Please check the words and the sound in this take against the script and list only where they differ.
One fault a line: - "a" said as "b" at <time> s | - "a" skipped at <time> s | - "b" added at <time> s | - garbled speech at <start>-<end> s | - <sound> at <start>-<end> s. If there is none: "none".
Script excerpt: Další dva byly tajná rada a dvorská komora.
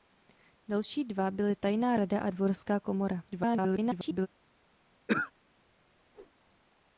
- garbled speech at 3.3-4.3 s
- throat clearing at 5.1-5.3 s
- whoosh at 6.1-6.4 s